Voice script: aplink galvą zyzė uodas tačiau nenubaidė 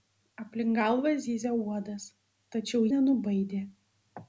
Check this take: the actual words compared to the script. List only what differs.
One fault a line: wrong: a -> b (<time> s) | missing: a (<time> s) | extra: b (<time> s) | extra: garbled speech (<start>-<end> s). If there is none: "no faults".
no faults